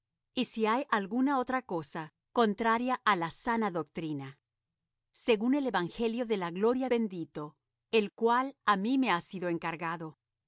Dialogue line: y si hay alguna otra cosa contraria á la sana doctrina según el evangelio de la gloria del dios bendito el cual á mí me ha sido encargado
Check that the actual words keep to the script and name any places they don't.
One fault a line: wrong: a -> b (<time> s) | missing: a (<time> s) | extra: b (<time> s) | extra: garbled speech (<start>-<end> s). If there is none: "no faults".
missing: del dios (6.9 s)